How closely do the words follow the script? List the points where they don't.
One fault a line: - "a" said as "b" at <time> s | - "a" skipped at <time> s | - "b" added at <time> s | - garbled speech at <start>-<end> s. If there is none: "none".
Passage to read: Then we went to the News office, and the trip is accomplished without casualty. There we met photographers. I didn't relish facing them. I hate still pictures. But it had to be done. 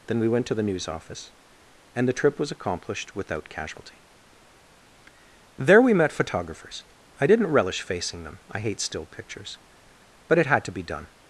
- "is" said as "was" at 2.4 s